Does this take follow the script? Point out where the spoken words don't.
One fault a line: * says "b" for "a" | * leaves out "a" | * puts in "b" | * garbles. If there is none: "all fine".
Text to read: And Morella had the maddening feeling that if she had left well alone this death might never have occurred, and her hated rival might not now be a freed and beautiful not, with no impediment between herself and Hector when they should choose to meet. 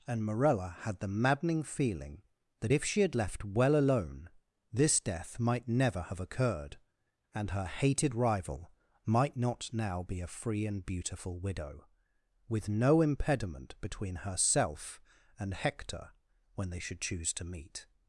* says "free" for "freed"
* says "widow" for "not"